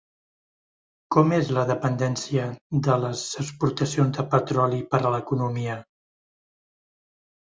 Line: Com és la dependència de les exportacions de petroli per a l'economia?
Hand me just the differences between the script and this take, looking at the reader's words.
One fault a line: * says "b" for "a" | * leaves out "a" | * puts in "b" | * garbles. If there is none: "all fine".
all fine